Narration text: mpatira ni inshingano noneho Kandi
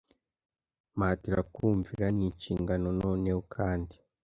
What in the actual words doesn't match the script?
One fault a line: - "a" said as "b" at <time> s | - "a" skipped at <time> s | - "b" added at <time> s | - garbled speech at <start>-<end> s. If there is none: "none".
- "kumvira" added at 1.5 s